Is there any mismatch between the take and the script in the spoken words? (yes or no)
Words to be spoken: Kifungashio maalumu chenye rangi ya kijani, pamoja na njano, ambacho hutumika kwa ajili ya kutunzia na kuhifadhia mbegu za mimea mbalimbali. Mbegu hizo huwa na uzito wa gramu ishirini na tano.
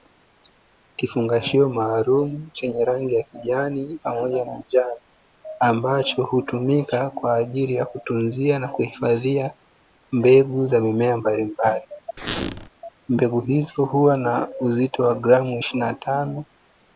no